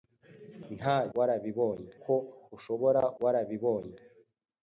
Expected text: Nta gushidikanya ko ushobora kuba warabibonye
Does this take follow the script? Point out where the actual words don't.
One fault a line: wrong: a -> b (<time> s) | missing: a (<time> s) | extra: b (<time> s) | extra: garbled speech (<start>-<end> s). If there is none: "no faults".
wrong: gushidikanya -> warabibonye (1.2 s)
missing: kuba (3.0 s)